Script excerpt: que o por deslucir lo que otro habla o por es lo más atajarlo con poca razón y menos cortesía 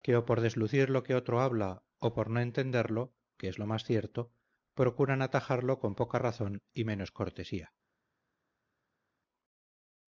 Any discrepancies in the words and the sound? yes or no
yes